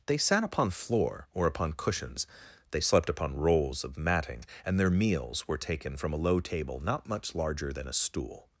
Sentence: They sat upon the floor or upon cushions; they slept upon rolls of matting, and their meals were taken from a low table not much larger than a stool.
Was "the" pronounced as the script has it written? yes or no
no